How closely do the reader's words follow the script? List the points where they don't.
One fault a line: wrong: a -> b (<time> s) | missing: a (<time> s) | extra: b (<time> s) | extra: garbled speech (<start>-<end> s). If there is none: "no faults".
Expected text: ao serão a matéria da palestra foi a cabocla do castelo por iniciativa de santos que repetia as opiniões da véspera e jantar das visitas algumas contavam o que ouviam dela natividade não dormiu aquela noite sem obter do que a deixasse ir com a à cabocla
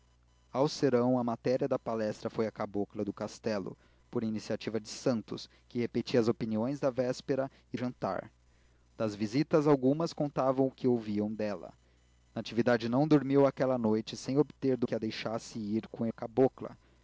no faults